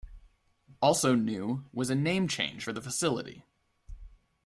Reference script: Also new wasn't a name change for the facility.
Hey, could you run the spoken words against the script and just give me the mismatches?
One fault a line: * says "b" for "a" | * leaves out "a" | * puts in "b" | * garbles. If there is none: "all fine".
* says "was" for "wasn't"